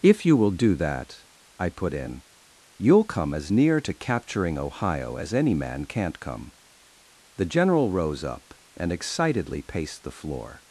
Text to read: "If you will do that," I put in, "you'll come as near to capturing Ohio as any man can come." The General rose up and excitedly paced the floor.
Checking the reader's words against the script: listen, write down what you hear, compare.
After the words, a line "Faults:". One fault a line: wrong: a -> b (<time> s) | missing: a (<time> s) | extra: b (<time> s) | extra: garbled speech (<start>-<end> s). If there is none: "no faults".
"If you will do that," I put in, "you'll come as near to capturing Ohio as any man can't come." The General rose up and excitedly paced the floor.
Faults:
wrong: can -> can't (5.8 s)